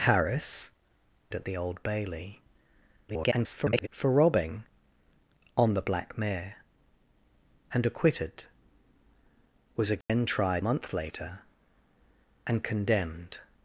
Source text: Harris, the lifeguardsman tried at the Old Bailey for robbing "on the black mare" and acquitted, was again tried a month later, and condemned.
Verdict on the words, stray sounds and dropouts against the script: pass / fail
fail